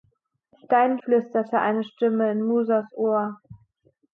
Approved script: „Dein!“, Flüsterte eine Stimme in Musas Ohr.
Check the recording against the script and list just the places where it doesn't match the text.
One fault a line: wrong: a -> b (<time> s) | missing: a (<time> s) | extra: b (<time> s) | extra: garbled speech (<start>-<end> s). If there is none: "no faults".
no faults